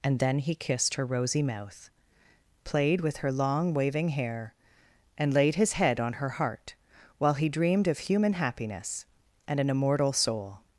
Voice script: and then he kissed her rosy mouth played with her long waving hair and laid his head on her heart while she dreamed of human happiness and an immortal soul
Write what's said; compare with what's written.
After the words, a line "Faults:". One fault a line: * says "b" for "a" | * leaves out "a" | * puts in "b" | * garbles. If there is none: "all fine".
and then he kissed her rosy mouth played with her long waving hair and laid his head on her heart while he dreamed of human happiness and an immortal soul
Faults:
* says "he" for "she"